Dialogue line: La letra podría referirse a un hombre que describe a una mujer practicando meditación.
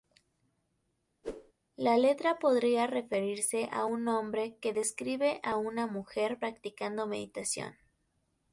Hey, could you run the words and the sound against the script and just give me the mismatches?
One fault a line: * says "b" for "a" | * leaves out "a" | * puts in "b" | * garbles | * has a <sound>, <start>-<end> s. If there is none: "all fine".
* has a whoosh, 1.2-1.5 s